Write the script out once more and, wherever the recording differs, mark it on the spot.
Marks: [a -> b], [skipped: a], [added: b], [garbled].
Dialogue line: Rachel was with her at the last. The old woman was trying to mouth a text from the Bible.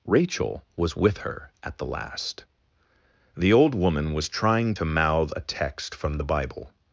Rachel was with her at the last. The old woman was trying to mouth a text from the Bible.